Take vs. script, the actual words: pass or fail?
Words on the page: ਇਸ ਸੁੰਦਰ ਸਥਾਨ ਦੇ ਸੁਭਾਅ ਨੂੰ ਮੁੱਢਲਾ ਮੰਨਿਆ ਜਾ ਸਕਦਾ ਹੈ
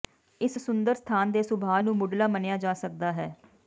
pass